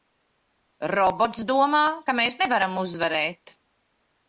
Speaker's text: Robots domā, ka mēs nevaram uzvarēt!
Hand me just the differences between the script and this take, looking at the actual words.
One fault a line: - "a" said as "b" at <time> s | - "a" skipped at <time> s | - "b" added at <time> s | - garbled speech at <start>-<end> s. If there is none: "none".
none